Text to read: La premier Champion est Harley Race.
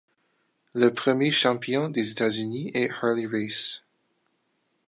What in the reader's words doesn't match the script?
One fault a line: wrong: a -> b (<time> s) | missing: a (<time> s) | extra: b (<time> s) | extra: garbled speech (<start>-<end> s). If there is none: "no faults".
wrong: La -> Le (0.7 s)
extra: des États Unis (1.9 s)